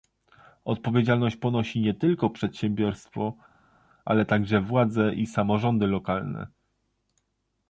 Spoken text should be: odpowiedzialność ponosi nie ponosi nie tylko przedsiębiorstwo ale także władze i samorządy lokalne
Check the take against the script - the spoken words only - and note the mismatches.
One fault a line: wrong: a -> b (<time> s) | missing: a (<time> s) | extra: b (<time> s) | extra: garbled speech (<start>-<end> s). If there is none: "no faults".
missing: ponosi nie (1.9 s)